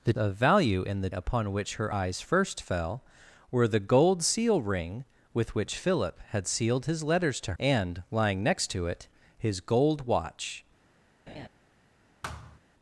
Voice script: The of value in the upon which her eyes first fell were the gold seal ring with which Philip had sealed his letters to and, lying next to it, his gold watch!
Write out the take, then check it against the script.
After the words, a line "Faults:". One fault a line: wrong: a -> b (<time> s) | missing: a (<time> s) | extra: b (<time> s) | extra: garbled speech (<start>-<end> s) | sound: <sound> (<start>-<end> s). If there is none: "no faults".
The of value in the upon which her eyes first fell were the gold seal ring with which Philip had sealed his letters to and, lying next to it, his gold watch!
Faults:
sound: laugh (11.3-11.5 s)
sound: thud (12.2-12.6 s)